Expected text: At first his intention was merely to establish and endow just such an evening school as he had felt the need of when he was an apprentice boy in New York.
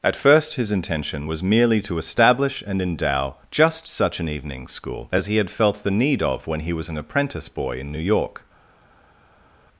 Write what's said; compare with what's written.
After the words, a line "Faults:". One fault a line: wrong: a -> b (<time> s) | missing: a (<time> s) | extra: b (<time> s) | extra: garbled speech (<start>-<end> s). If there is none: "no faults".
At first his intention was merely to establish and endow just such an evening school as he had felt the need of when he was an apprentice boy in New York.
Faults:
no faults